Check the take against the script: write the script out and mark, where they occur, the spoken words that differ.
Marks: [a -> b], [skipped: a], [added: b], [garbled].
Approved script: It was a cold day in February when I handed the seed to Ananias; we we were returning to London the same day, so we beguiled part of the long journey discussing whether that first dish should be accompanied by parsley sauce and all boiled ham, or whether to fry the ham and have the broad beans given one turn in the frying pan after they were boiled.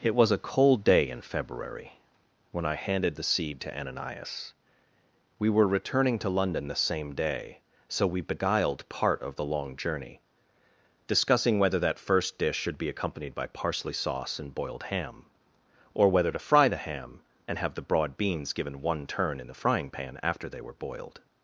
It was a cold day in February when I handed the seed to Ananias; we [skipped: we] were returning to London the same day, so we beguiled part of the long journey discussing whether that first dish should be accompanied by parsley sauce and [skipped: all] boiled ham, or whether to fry the ham and have the broad beans given one turn in the frying pan after they were boiled.